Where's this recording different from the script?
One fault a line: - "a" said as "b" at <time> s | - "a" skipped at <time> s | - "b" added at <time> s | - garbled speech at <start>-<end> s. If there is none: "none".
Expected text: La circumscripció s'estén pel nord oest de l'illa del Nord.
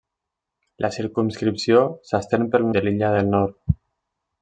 - "nord oest" skipped at 2.7 s